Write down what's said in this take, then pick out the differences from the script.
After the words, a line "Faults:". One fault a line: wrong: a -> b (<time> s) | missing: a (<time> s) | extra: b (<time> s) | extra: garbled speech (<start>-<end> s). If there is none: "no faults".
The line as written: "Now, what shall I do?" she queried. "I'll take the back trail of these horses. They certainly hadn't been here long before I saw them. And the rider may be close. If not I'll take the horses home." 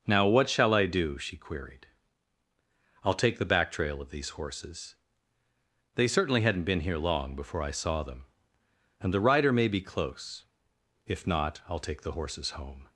"Now, what shall I do?" she queried. "I'll take the back trail of these horses. They certainly hadn't been here long before I saw them. And the rider may be close. If not I'll take the horses home."
Faults:
no faults